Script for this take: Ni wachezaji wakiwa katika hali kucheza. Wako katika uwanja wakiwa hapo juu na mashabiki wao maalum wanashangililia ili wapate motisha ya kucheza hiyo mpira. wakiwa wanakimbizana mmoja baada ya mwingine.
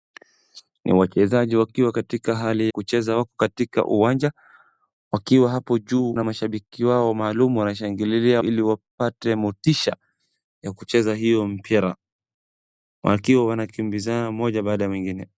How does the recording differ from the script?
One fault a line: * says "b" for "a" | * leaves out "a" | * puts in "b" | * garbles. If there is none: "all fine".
all fine